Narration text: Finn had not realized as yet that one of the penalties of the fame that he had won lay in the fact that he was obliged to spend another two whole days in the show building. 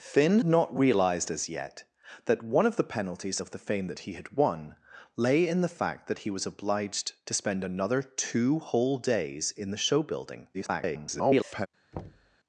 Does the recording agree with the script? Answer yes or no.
no